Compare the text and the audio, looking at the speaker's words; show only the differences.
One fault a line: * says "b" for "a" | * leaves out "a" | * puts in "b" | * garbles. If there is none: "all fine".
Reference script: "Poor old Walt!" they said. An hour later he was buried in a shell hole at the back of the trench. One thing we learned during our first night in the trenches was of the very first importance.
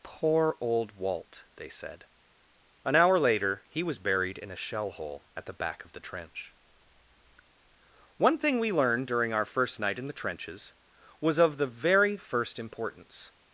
all fine